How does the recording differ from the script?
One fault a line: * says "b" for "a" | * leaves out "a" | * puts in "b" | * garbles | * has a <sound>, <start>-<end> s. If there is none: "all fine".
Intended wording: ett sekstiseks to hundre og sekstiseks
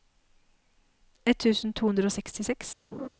* says "tusen" for "sekstiseks"
* has a laugh, 2.9-3.1 s